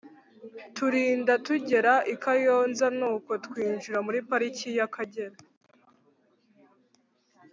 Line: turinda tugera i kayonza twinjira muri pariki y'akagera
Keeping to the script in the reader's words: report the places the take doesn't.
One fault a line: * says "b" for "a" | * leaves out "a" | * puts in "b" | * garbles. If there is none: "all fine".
* puts in "nuko"